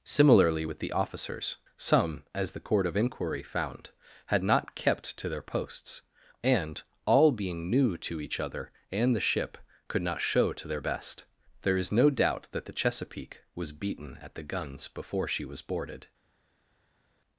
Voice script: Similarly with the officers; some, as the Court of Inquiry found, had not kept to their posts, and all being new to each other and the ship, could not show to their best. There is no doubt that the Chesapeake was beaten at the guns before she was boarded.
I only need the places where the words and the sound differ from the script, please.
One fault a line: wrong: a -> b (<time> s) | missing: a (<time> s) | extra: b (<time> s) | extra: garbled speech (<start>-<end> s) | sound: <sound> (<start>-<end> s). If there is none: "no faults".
no faults